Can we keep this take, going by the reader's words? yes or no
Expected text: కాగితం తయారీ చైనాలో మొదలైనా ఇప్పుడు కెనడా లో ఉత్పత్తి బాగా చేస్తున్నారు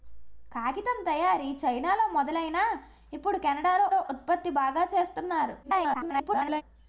no